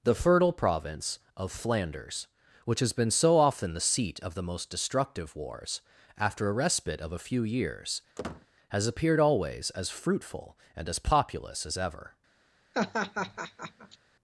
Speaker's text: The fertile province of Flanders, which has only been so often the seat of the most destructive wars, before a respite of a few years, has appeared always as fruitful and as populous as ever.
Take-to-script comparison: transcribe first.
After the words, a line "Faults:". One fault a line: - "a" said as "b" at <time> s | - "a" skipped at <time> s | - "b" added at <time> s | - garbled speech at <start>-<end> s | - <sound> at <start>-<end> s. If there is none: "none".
The fertile province of Flanders, which has been so often the seat of the most destructive wars, after a respite of a few years, has appeared always as fruitful and as populous as ever.
Faults:
- "only" skipped at 2.9 s
- "before" said as "after" at 6.2 s
- squeak at 8.2-8.5 s
- laugh at 12.7-14.0 s